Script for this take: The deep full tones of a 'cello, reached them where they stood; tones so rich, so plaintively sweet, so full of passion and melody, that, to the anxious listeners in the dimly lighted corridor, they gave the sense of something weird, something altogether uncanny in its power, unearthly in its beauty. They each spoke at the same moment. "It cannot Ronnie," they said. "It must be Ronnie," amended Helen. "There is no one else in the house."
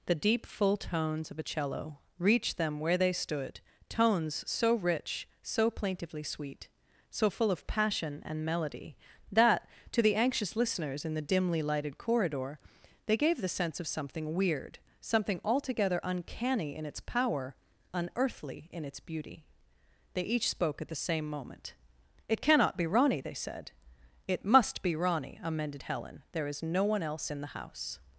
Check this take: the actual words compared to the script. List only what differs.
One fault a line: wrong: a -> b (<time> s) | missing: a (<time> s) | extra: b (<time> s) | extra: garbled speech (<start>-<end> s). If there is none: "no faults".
extra: be (22.8 s)